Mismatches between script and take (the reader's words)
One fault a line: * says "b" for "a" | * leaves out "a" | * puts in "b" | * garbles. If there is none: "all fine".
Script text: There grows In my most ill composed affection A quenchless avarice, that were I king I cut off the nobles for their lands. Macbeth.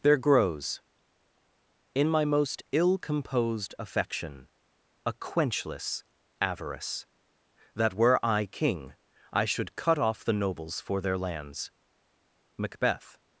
* puts in "should"